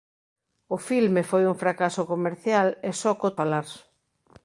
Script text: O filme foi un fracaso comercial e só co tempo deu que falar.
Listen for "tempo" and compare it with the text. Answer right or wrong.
wrong